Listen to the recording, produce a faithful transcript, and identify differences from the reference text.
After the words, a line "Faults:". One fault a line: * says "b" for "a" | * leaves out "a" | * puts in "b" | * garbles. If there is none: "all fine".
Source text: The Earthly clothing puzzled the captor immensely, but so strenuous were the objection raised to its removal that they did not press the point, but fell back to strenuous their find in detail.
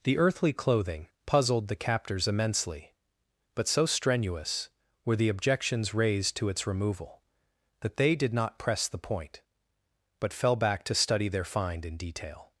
The Earthly clothing puzzled the captors immensely, but so strenuous were the objections raised to its removal that they did not press the point, but fell back to study their find in detail.
Faults:
* says "captors" for "captor"
* says "objections" for "objection"
* says "study" for "strenuous"